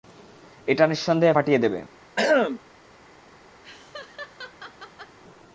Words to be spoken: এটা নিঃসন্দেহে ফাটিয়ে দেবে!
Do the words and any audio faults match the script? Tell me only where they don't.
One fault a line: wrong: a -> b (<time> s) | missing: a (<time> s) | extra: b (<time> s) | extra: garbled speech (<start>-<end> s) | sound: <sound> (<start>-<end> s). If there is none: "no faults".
sound: throat clearing (2.2-2.6 s)
sound: laugh (3.6-5.2 s)